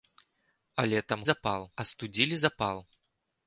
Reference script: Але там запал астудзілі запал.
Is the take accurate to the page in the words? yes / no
yes